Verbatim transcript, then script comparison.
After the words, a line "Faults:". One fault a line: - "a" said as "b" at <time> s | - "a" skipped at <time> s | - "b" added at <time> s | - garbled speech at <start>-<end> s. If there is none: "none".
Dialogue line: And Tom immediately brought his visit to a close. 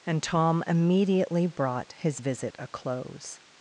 And Tom immediately brought his visit a close.
Faults:
- "to" skipped at 2.6 s